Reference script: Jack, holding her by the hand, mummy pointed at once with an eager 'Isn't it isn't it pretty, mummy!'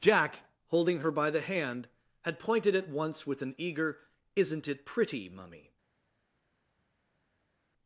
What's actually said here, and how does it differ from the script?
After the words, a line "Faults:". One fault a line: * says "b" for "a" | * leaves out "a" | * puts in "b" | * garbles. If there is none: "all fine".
Jack, holding her by the hand, had pointed at once with an eager 'Isn't it pretty, mummy!'
Faults:
* says "had" for "mummy"
* leaves out "isn't it"